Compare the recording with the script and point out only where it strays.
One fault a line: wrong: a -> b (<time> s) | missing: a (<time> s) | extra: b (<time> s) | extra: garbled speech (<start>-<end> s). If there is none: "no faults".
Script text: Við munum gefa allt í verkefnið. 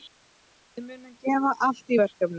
no faults